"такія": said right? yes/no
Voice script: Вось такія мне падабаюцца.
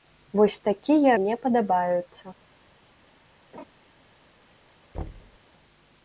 yes